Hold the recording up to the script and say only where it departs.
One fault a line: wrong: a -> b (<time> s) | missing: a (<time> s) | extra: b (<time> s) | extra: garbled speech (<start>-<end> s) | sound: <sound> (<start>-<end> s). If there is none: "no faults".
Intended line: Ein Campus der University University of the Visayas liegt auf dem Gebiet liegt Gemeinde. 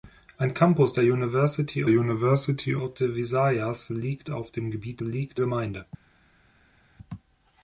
no faults